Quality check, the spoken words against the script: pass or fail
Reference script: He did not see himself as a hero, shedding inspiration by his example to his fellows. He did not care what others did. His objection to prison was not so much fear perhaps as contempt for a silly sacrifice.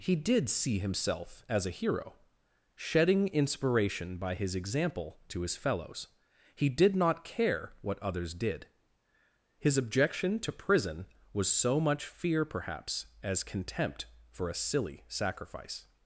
fail